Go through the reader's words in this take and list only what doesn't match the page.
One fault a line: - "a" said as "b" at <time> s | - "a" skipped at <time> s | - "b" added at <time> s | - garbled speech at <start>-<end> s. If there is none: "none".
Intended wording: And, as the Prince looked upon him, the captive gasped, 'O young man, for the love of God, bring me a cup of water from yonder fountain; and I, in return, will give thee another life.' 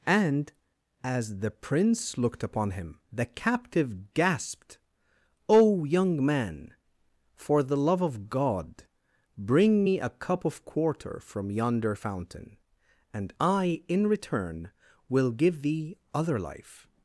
- "water" said as "quarter" at 10.6 s
- "another" said as "other" at 16.1 s